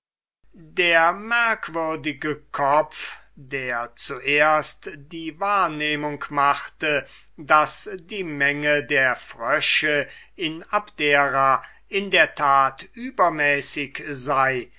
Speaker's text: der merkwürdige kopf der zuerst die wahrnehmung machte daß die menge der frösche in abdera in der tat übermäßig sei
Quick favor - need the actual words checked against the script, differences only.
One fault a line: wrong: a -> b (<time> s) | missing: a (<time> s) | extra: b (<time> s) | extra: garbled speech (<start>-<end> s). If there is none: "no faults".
no faults